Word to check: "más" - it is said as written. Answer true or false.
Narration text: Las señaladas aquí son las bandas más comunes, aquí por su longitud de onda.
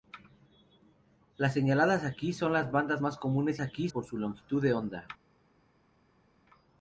true